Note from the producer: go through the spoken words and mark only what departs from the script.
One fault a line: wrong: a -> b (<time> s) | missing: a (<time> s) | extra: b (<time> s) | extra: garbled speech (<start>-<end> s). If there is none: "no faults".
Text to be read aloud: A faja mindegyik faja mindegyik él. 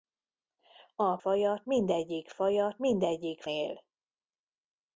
no faults